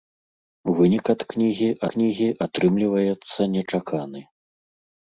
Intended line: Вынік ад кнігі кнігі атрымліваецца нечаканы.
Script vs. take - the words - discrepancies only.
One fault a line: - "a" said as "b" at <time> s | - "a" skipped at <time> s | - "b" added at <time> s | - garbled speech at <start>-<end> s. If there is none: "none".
none